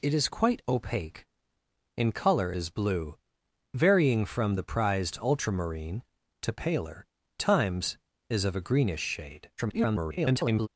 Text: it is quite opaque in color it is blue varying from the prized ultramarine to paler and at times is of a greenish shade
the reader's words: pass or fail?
fail